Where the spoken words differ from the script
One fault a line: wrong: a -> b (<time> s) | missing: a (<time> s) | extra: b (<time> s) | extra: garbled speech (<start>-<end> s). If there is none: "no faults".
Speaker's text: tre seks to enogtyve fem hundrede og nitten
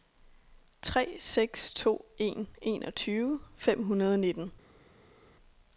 extra: en (2.2 s)